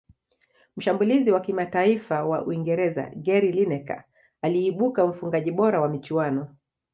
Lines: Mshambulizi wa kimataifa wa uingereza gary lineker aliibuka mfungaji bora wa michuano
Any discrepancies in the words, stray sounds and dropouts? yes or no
no